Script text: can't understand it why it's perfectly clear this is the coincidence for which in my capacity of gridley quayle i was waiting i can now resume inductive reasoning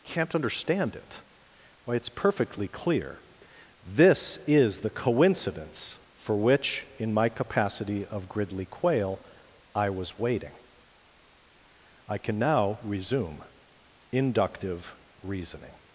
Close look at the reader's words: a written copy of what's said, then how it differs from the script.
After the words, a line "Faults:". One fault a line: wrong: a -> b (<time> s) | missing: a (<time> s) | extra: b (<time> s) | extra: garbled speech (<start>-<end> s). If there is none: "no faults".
can't understand it why it's perfectly clear this is the coincidence for which in my capacity of gridley quayle i was waiting i can now resume inductive reasoning
Faults:
no faults